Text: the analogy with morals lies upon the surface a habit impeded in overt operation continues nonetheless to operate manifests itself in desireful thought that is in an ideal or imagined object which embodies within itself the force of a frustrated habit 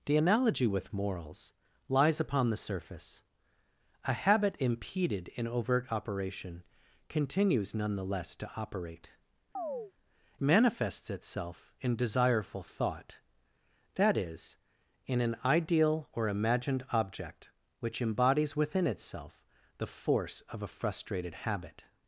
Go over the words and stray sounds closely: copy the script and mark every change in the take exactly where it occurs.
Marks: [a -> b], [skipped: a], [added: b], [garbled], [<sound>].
the analogy with morals lies upon the surface a habit impeded in overt operation continues nonetheless to operate [chirp] manifests itself in desireful thought that is in an ideal or imagined object which embodies within itself the force of a frustrated habit